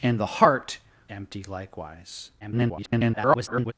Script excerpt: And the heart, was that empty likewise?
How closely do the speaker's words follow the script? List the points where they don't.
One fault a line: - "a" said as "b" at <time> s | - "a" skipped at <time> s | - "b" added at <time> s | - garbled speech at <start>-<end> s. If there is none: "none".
- "was that" skipped at 0.8 s
- garbled speech at 2.4-3.7 s